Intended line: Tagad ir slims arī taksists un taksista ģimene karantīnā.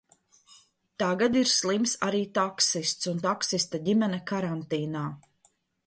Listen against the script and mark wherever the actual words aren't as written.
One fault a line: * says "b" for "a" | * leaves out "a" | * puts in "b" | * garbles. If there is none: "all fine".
all fine